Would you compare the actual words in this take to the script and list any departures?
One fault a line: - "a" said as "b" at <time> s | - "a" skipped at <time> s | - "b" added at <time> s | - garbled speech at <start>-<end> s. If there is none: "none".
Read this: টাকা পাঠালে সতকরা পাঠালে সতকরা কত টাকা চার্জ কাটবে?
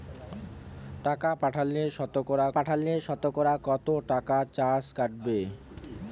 none